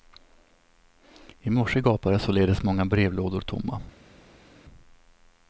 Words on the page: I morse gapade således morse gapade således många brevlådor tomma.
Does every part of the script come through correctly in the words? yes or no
no